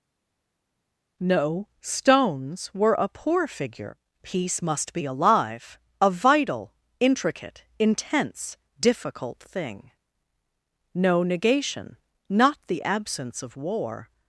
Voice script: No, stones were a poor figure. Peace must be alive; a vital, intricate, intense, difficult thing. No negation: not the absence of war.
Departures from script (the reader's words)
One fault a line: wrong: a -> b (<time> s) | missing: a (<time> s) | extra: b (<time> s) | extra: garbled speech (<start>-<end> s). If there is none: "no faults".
no faults